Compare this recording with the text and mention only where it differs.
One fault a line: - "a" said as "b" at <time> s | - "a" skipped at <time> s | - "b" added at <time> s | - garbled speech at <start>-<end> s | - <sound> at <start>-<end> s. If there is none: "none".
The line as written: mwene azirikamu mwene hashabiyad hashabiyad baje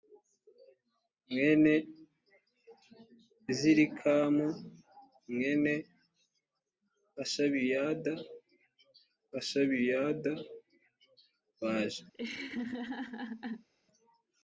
- laugh at 12.1-13.7 s